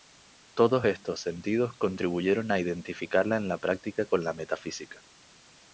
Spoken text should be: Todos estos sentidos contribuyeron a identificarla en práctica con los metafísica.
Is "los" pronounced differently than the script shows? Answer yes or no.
yes